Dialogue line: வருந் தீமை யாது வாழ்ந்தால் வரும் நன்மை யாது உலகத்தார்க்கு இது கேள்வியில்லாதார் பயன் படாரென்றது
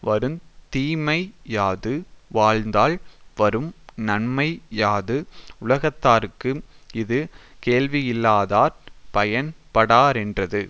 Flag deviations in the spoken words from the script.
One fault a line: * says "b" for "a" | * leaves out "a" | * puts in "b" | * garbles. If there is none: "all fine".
all fine